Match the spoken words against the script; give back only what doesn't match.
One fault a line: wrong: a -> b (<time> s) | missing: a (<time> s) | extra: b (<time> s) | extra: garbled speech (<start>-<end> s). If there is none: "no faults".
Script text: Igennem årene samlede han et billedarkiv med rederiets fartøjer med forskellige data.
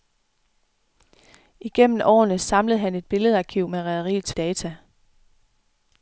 missing: fartøjer med forskellige (4.3 s)